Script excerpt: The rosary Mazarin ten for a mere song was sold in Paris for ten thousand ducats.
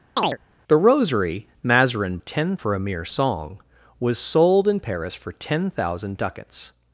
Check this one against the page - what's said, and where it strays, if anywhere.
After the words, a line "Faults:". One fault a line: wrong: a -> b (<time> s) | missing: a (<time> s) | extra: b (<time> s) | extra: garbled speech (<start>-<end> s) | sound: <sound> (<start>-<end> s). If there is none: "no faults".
The rosary Mazarin ten for a mere song was sold in Paris for ten thousand ducats.
Faults:
sound: chirp (0.2-0.4 s)